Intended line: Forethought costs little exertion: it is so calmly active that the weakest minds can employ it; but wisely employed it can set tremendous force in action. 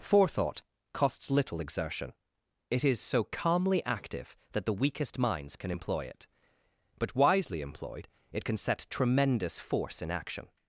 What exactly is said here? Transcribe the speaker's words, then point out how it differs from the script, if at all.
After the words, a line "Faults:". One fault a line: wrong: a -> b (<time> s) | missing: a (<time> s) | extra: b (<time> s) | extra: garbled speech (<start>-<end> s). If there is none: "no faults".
Forethought costs little exertion: it is so calmly active that the weakest minds can employ it; but wisely employed it can set tremendous force in action.
Faults:
no faults